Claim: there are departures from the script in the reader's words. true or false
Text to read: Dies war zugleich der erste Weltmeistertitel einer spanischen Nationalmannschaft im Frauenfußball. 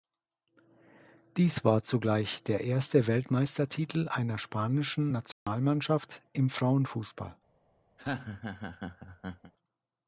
false